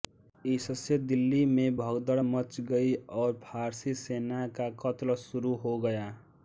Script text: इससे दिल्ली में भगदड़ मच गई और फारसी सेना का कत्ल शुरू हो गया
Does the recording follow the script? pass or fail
pass